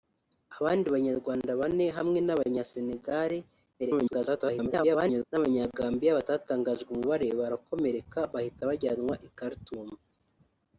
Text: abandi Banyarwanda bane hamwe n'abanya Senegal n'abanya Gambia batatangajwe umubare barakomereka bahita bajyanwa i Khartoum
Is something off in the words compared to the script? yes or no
yes